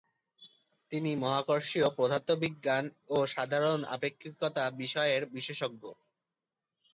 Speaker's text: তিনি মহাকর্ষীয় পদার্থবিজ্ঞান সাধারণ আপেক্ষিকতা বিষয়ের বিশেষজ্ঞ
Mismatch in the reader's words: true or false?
true